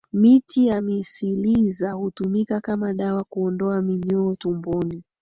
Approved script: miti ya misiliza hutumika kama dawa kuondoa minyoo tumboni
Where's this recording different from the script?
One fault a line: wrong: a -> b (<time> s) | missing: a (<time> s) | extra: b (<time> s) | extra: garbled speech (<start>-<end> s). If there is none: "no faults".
no faults